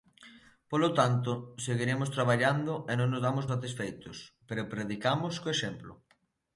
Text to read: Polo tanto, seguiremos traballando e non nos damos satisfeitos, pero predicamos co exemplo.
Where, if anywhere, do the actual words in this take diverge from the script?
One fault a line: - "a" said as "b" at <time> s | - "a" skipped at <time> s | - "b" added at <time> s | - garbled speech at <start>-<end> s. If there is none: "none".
none